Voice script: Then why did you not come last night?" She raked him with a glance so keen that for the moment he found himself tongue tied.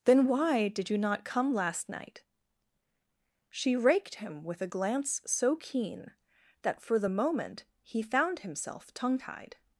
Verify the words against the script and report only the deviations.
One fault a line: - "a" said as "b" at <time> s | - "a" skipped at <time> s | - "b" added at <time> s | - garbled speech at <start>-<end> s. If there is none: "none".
none